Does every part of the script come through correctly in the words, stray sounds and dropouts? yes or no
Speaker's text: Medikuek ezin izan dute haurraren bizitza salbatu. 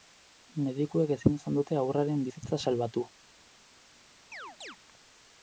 no